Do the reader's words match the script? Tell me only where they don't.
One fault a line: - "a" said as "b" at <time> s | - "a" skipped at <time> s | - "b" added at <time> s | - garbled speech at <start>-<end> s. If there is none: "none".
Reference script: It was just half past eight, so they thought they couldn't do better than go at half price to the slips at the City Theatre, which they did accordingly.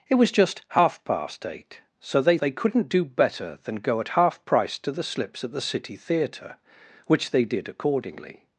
- "thought" skipped at 2.4 s